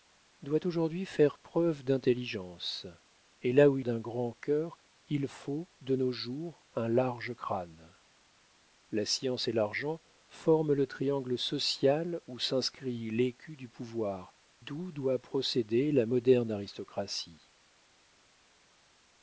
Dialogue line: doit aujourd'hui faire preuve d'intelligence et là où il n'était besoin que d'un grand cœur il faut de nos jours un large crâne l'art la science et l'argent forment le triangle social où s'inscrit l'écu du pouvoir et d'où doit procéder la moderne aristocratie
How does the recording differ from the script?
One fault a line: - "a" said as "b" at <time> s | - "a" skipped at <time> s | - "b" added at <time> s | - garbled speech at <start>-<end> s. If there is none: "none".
- "n'était besoin que" skipped at 3.9 s
- "l'art" skipped at 7.9 s
- "et" skipped at 14.3 s